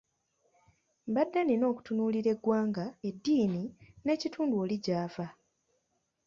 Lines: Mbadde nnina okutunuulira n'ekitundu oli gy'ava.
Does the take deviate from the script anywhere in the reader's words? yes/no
yes